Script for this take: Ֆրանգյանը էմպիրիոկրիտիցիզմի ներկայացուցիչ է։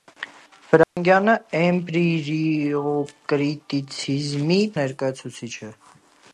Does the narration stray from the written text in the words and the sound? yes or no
yes